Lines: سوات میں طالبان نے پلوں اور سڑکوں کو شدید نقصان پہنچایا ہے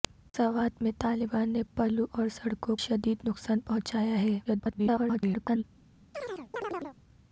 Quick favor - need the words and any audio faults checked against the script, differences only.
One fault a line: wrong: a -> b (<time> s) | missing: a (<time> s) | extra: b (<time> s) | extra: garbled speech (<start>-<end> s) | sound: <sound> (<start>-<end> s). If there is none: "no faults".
missing: کو (2.8 s)
extra: garbled speech (4.4-5.6 s)
sound: chirp (6.1-7.0 s)